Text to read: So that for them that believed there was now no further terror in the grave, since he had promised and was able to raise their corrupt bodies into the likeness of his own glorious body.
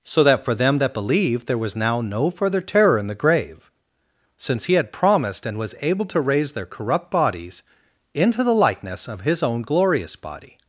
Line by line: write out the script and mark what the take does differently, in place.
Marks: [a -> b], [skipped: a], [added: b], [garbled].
So that for them that believed there was now no further terror in the grave, since he had promised and was able to raise their corrupt bodies into the likeness of his own glorious body.